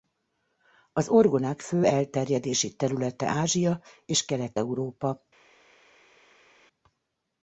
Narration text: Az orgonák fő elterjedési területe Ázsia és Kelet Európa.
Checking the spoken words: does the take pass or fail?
pass